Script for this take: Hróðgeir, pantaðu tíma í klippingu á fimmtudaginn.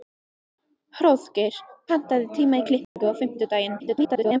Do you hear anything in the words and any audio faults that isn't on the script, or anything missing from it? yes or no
yes